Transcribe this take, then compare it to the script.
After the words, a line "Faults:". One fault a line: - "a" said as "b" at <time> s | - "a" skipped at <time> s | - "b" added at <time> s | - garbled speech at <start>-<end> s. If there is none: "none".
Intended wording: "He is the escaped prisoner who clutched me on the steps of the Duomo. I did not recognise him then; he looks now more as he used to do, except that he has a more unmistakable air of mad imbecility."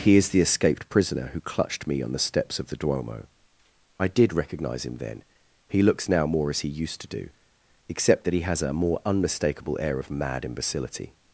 "He is the escaped prisoner who clutched me on the steps of the Duomo. I did recognise him then; he looks now more as he used to do, except that he has a more unmistakable air of mad imbecility."
Faults:
- "not" skipped at 4.3 s